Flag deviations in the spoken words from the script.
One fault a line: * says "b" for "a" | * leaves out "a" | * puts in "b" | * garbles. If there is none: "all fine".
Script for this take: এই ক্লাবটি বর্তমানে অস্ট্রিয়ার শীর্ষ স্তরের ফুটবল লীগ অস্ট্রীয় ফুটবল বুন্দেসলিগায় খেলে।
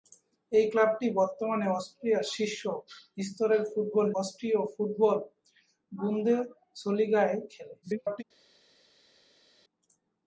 * leaves out "লীগ"
* garbles